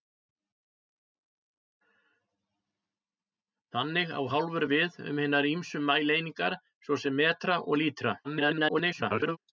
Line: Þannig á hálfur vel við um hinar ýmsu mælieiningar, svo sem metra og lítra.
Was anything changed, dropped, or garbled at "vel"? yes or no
yes